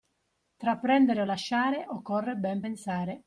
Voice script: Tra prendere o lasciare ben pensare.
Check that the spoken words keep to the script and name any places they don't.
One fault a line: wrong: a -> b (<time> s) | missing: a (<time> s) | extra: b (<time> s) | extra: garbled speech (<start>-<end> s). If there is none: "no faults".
extra: occorre (1.9 s)